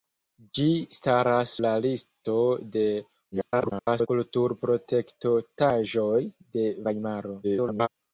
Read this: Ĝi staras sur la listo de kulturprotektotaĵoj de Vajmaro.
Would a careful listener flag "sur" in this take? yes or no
yes